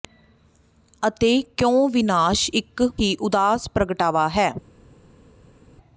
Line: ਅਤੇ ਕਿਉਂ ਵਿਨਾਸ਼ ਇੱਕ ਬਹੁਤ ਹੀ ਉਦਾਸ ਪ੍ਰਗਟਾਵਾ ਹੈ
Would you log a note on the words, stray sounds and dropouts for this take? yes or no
yes